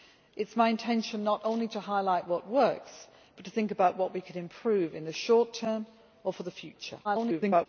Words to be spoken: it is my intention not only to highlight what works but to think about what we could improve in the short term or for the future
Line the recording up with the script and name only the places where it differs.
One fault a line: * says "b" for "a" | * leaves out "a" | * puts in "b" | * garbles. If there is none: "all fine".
* garbles